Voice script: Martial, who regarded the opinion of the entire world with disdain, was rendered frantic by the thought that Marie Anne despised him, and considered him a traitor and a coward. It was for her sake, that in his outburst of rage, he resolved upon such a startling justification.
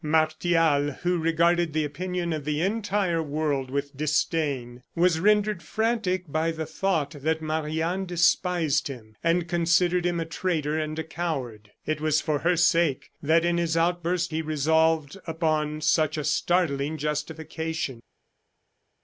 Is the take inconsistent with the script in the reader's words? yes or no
yes